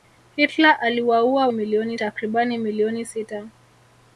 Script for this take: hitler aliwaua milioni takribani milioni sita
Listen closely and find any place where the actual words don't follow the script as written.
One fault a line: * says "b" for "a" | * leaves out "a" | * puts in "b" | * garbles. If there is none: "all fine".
all fine